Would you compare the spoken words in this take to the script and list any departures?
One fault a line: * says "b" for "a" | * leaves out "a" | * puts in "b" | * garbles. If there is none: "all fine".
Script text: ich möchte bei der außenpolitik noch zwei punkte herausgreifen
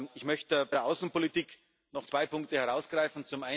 all fine